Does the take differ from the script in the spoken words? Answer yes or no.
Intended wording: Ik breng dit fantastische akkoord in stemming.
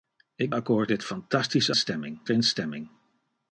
yes